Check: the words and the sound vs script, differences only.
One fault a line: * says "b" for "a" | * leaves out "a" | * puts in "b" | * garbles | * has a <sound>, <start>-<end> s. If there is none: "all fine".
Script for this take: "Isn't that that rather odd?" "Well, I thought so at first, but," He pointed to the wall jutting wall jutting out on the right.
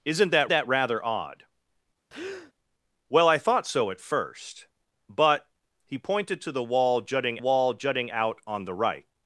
* has a breath, 2.1-2.5 s